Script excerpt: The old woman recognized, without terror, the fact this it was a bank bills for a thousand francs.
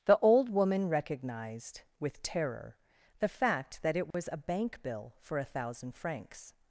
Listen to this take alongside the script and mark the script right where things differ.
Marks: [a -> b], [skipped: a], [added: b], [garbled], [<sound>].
The old woman recognized, [without -> with] terror, the fact [this -> that] it was [dropout] a bank [bills -> bill] for a thousand francs.